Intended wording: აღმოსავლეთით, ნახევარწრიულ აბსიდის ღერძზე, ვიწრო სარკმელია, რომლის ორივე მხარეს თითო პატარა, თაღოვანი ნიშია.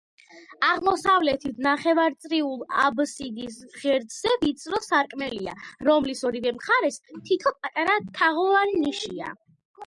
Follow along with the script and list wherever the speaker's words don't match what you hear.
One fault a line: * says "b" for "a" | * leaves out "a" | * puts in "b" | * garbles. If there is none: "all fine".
all fine